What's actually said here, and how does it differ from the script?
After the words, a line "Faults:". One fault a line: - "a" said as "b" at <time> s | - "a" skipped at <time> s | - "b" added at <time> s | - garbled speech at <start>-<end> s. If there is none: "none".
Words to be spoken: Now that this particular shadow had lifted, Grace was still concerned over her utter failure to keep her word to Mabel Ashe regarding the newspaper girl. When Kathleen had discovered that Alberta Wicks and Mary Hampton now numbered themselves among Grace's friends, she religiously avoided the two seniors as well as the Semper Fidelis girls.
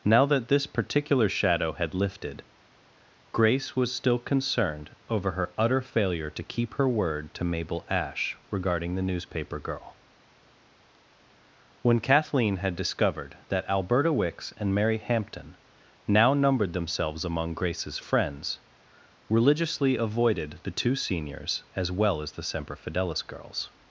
Now that this particular shadow had lifted, Grace was still concerned over her utter failure to keep her word to Mabel Ashe regarding the newspaper girl. When Kathleen had discovered that Alberta Wicks and Mary Hampton now numbered themselves among Grace's friends, religiously avoided the two seniors as well as the Semper Fidelis girls.
Faults:
- "she" skipped at 18.6 s